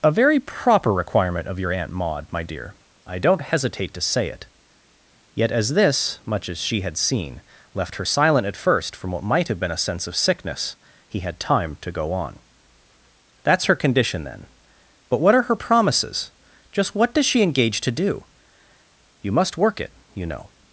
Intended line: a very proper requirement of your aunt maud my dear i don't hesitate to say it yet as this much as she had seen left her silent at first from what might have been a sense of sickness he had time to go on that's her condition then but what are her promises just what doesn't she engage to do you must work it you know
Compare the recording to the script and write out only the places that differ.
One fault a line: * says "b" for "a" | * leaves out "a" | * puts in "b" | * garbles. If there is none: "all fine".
* says "does" for "doesn't"